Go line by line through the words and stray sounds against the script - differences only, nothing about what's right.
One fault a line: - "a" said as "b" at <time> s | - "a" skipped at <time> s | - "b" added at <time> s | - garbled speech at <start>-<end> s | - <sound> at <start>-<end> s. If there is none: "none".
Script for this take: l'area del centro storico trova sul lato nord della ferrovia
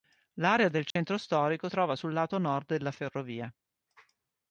- dropout at 0.9-1.0 s